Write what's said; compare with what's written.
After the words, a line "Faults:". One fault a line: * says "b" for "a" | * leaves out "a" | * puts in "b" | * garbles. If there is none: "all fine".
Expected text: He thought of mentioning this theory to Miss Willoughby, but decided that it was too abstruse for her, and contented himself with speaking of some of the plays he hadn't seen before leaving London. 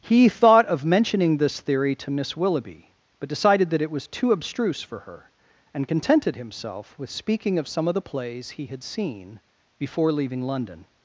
He thought of mentioning this theory to Miss Willoughby, but decided that it was too abstruse for her, and contented himself with speaking of some of the plays he had seen before leaving London.
Faults:
* says "had" for "hadn't"